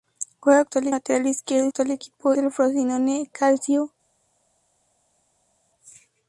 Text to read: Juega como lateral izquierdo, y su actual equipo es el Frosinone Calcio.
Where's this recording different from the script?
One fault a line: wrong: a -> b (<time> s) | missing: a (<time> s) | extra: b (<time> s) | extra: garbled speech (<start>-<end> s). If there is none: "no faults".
wrong: como -> actual (0.6 s)
missing: su (1.7 s)
missing: es (2.3 s)